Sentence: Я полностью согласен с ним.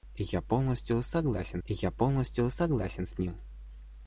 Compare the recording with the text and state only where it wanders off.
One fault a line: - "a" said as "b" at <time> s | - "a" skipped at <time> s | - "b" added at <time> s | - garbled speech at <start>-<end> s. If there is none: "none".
- "я полностью согласен" added at 1.7 s